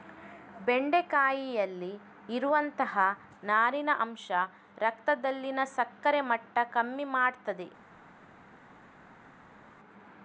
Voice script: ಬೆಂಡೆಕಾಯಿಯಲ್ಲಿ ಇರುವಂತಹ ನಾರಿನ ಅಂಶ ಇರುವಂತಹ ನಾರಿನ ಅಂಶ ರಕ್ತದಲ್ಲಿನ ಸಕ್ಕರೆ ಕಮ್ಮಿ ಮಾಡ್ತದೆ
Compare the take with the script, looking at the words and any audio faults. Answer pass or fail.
fail